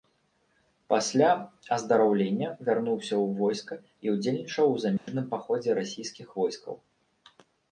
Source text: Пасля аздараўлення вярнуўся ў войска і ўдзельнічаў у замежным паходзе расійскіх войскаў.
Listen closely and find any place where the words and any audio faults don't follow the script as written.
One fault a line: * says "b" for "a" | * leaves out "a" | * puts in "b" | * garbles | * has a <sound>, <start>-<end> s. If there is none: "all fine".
* has a dropout, 5.0-5.1 s